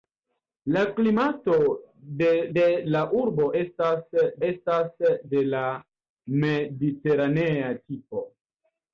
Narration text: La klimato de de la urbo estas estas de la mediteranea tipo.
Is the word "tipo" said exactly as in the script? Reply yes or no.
yes